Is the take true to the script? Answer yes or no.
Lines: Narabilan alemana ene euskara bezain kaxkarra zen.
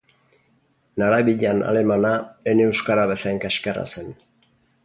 yes